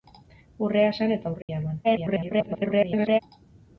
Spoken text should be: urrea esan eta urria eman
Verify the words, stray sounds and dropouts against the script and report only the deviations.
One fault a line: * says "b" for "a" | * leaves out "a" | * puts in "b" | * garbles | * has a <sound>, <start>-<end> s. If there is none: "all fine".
* has a dropout, 1.4-1.5 s
* garbles